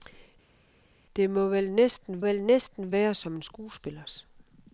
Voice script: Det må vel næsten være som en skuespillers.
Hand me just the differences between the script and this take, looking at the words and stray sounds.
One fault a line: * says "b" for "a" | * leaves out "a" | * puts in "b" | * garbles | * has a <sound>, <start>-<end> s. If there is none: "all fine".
* puts in "vel næsten"